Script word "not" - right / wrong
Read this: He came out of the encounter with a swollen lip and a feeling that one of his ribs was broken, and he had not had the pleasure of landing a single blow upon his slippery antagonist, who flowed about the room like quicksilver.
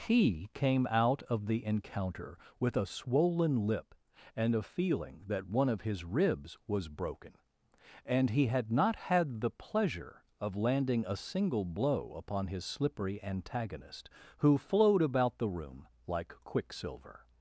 right